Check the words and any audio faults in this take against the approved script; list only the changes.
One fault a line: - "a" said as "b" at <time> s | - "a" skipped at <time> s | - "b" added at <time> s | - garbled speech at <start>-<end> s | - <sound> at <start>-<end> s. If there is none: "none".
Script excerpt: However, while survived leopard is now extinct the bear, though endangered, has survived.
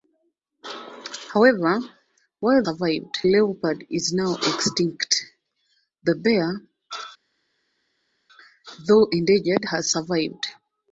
none